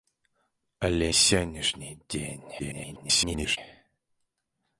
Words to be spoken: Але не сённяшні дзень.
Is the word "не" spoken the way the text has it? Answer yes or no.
no